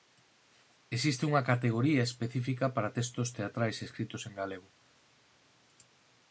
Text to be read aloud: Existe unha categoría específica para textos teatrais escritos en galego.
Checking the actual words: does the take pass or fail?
pass